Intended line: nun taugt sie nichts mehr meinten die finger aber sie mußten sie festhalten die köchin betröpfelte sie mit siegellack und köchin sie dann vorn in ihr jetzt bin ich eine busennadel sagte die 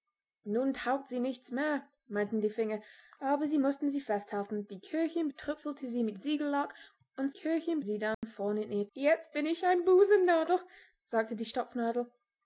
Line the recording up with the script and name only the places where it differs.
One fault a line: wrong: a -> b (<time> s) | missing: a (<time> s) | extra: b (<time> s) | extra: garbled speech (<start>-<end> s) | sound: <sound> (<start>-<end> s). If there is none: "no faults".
sound: dropout (8.1-8.2 s)